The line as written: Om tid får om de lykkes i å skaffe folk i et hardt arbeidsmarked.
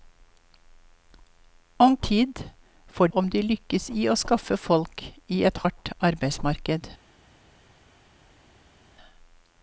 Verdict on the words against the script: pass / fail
pass